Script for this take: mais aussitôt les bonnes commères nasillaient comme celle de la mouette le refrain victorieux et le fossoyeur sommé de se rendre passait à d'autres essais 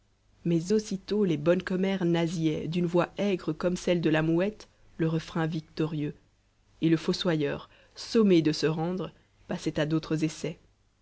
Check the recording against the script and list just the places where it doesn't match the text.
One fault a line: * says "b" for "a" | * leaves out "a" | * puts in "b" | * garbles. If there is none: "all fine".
* puts in "d'une voix aigre"